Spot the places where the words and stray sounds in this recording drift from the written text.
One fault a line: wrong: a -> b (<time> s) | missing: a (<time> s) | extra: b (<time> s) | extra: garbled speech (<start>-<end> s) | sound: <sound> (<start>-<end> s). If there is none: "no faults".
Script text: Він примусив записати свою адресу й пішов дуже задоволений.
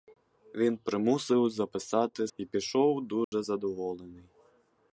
missing: свою адресу (2.3 s)
sound: dropout (3.2-3.3 s)